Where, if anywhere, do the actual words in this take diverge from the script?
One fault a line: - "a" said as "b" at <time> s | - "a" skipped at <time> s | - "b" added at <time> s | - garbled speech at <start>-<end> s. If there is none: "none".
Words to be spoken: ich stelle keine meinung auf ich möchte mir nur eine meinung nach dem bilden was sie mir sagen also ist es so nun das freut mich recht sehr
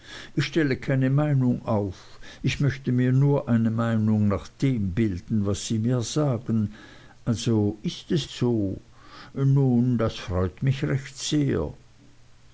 none